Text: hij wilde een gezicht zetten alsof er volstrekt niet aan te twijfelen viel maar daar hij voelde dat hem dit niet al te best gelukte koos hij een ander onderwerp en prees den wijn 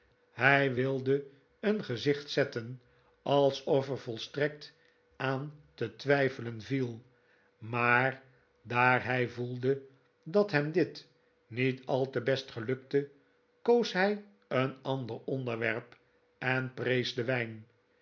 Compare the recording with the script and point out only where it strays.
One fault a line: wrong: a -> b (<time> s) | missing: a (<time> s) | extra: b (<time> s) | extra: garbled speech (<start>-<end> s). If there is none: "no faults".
missing: niet (4.7 s)